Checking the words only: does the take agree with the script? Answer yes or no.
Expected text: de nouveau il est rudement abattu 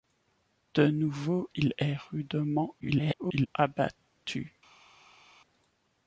no